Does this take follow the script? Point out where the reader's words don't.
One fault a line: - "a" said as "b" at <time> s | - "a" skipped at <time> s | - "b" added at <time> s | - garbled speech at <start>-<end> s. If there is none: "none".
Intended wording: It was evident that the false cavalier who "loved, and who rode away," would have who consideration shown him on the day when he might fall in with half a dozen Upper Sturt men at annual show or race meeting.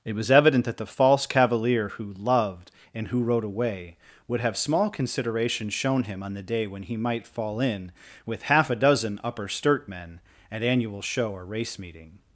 - "who" said as "small" at 4.6 s